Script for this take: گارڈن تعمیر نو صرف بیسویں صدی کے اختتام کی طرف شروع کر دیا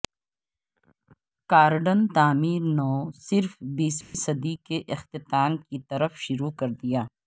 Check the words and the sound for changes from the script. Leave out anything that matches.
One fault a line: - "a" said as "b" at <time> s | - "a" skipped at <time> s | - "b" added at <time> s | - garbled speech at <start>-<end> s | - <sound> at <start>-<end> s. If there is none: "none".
- dropout at 4.0-4.1 s